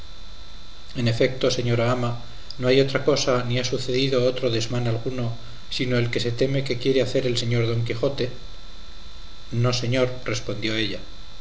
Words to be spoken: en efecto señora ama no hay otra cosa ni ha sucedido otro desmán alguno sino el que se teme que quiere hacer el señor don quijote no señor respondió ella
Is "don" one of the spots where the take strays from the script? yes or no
no